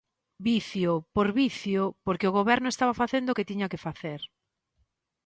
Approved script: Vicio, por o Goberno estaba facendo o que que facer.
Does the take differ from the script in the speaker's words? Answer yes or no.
yes